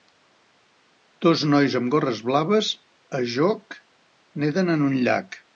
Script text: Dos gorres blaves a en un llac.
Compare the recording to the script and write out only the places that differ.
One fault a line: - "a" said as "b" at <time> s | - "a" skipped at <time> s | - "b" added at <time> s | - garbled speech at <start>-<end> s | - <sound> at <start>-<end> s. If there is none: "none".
- "nois amb" added at 1.5 s
- "joc neden" added at 3.4 s